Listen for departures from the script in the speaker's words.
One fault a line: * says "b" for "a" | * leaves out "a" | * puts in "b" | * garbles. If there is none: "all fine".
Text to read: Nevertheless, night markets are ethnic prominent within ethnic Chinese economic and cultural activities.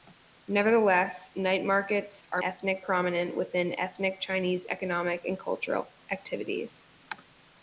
all fine